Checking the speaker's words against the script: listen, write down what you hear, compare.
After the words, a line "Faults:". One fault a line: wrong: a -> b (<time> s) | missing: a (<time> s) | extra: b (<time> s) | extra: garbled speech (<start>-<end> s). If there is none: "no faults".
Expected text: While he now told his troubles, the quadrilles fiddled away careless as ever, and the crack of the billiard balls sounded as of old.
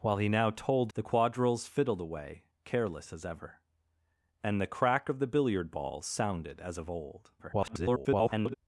While he now told the quadrilles fiddled away careless as ever, and the crack of the billiard balls sounded as of old. [garbled]
Faults:
missing: his troubles (0.9 s)
extra: garbled speech (7.4-8.5 s)